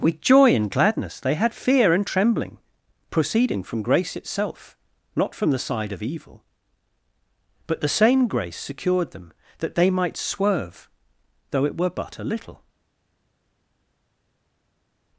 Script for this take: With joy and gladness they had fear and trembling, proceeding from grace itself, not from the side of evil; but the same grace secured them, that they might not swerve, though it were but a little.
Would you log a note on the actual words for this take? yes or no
yes